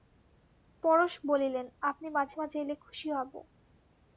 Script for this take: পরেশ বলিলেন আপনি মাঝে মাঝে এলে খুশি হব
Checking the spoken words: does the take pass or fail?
pass